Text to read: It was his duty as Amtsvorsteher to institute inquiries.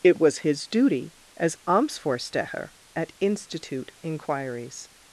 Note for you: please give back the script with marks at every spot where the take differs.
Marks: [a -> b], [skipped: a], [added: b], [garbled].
It was his duty as Amtsvorsteher [to -> at] institute inquiries.